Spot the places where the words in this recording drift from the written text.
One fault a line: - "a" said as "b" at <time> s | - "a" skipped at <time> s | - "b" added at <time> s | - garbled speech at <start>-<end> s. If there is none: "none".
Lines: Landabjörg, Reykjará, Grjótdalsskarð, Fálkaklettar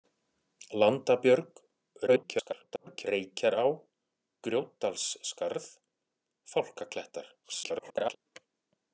- garbled speech at 2.1-3.1 s
- garbled speech at 7.4-8.2 s